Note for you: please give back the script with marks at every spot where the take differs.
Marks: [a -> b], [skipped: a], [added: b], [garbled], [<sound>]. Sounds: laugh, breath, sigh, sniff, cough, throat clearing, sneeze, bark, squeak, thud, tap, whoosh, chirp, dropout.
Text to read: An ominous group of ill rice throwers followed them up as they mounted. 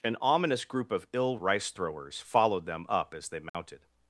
An ominous group of ill rice throwers followed them up as they mounted. [dropout]